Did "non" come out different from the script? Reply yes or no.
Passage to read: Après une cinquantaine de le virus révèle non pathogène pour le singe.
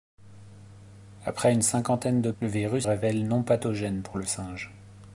no